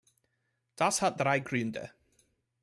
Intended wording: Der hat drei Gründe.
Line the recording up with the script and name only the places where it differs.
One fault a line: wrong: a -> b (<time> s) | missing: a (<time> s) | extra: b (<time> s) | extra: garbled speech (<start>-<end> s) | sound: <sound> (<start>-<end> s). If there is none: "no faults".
wrong: Der -> Das (0.8 s)